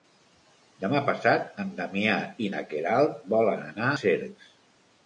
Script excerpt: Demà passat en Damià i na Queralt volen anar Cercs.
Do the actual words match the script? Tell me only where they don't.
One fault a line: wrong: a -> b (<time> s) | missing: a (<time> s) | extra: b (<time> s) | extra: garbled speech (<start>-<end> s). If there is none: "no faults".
no faults